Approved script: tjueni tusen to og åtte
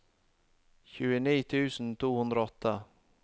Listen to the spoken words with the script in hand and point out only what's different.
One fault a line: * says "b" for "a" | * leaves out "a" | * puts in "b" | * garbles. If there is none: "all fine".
* puts in "hundre"